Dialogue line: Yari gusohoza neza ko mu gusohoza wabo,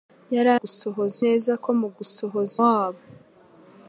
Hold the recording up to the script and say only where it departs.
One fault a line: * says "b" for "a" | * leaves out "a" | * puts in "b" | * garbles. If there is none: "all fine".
all fine